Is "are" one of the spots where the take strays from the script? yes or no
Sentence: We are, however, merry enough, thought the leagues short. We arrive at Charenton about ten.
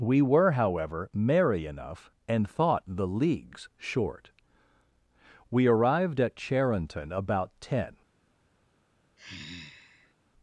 yes